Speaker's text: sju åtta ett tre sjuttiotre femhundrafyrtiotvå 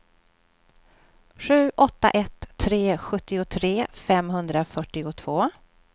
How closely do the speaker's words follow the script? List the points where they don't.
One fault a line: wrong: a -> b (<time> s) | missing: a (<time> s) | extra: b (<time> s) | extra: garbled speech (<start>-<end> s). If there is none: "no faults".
no faults